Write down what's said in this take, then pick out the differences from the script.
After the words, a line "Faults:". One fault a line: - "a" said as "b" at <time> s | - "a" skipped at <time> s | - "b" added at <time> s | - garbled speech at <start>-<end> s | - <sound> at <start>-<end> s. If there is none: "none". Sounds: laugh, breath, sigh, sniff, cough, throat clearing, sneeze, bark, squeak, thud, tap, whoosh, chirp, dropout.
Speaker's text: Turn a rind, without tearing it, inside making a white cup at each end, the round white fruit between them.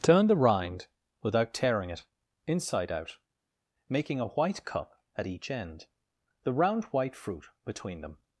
Turn the rind, without tearing it, inside out, making a white cup at each end, the round white fruit between them.
Faults:
- "a" said as "the" at 0.2 s
- "out" added at 2.9 s